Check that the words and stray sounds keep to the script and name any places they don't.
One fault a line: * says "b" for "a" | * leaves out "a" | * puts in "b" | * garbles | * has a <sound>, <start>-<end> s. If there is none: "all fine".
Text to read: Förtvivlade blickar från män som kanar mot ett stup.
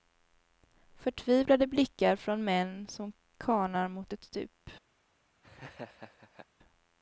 * has a laugh, 5.4-6.5 s